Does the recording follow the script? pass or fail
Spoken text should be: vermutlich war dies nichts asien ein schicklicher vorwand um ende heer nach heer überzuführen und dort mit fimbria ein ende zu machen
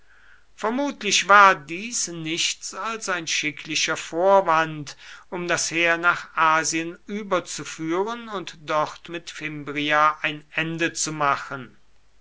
fail